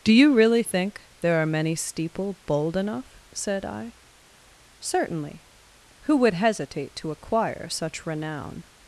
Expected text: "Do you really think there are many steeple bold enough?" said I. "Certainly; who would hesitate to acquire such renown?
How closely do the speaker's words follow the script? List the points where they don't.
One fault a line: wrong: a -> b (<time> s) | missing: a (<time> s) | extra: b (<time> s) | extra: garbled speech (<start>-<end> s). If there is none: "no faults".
no faults